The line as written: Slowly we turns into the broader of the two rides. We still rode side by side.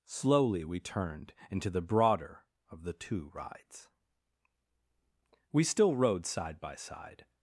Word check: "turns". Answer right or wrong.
wrong